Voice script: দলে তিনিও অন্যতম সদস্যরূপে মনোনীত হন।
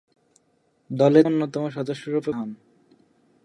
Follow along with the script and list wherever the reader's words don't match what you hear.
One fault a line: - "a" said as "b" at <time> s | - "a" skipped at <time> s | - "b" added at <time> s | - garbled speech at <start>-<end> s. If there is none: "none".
- "তিনিও" skipped at 1.2 s
- "মনোনীত" skipped at 2.3 s